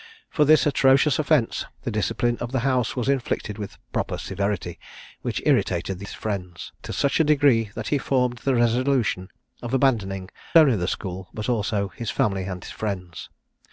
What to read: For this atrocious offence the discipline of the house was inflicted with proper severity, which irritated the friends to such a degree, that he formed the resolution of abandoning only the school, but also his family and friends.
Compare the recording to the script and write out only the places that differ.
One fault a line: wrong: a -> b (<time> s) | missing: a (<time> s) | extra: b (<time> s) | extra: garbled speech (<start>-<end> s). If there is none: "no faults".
no faults